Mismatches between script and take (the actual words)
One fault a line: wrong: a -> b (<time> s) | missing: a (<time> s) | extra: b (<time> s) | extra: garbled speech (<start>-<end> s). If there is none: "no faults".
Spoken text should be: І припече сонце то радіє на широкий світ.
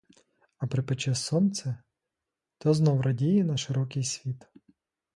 wrong: І -> А (0.6 s)
extra: знов (2.7 s)